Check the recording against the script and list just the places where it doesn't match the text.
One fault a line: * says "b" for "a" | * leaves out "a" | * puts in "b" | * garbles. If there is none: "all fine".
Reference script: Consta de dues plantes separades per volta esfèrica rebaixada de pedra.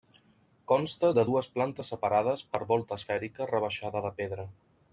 all fine